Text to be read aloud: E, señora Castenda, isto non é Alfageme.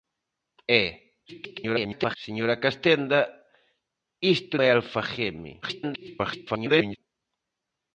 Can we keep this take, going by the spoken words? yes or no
no